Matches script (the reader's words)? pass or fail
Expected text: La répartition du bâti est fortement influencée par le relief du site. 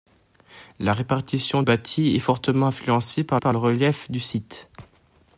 fail